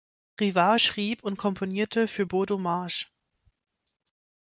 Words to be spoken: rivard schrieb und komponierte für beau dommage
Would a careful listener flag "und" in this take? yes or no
no